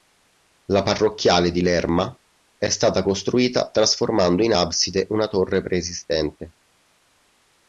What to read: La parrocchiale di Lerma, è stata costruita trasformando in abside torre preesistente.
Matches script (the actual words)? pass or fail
fail